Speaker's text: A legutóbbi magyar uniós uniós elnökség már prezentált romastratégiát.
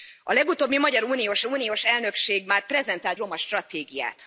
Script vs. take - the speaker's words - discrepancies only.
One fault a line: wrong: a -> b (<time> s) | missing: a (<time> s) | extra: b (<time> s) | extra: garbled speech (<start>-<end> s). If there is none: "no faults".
no faults